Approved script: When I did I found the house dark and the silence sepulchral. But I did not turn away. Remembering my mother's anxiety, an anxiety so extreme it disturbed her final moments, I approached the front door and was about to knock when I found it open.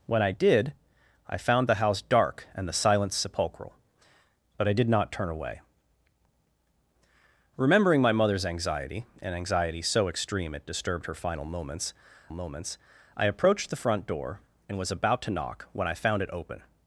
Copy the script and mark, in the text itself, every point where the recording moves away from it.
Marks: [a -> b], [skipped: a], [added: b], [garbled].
When I did I found the house dark and the silence sepulchral. But I did not turn away. Remembering my mother's anxiety, an anxiety so extreme it disturbed her final moments, [added: moments] I approached the front door and was about to knock when I found it open.